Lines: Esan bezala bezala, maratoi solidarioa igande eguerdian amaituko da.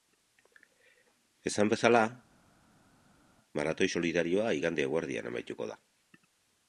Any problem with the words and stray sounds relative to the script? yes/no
yes